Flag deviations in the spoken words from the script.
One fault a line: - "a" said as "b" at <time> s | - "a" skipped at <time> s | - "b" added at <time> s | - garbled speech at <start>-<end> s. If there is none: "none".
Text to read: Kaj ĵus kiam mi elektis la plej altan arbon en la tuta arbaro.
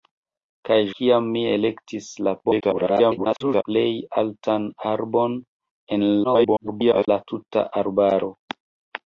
- "ĵus" skipped at 0.8 s
- garbled speech at 2.4-3.6 s
- garbled speech at 6.2-7.1 s